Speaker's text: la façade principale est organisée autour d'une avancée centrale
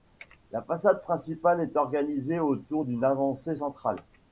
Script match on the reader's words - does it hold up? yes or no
yes